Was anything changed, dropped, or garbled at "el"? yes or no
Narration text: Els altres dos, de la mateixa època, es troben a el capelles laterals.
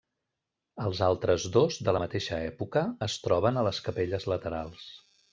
yes